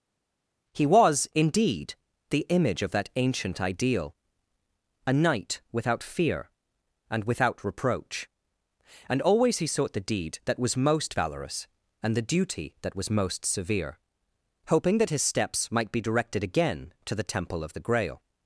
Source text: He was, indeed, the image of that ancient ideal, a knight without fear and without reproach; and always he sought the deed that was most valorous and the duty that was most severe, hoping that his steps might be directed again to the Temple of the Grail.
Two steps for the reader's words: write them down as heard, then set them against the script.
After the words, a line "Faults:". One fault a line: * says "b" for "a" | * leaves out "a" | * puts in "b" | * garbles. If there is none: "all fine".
He was, indeed, the image of that ancient ideal, a knight without fear and without reproach; and always he sought the deed that was most valorous and the duty that was most severe, hoping that his steps might be directed again to the Temple of the Grail.
Faults:
all fine